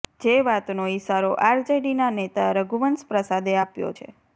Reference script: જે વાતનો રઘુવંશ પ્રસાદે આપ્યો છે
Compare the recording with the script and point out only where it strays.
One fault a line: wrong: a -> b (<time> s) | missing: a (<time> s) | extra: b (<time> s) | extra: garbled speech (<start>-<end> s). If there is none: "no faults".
extra: ઈશારો આરજેડીના નેતા (0.9 s)